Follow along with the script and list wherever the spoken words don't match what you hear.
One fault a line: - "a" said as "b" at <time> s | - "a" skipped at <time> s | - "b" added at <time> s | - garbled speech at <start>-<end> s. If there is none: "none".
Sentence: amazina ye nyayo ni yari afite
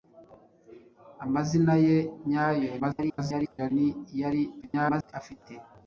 - garbled speech at 2.8-3.7 s
- garbled speech at 4.6-5.1 s